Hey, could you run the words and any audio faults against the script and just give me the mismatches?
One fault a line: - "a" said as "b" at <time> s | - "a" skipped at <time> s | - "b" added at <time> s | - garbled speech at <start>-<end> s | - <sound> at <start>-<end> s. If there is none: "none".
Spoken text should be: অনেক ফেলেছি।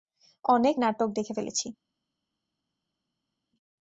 - "নাটক দেখে" added at 0.8 s